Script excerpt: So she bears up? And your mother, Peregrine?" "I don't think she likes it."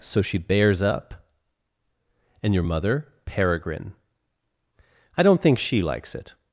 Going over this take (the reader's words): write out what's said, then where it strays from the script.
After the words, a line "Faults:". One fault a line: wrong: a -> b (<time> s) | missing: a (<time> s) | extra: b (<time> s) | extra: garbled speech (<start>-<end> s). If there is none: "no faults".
So she bears up? And your mother, Peregrine?" "I don't think she likes it."
Faults:
no faults